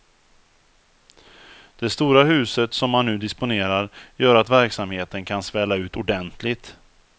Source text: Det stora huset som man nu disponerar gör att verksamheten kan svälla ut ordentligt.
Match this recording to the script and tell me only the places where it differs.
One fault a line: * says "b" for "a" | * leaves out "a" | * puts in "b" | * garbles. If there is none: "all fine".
all fine